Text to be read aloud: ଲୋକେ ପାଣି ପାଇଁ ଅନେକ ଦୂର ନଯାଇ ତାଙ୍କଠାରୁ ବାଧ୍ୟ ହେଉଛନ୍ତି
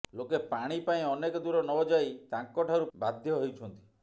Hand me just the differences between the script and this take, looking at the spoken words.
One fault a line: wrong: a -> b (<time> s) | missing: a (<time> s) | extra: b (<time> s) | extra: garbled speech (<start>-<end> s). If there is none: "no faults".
no faults